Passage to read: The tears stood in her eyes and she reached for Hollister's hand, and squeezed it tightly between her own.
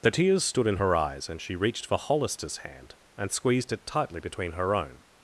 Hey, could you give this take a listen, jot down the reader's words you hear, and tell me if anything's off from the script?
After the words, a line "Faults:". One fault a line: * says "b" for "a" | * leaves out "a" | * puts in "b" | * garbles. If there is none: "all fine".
The tears stood in her eyes and she reached for Hollister's hand, and squeezed it tightly between her own.
Faults:
all fine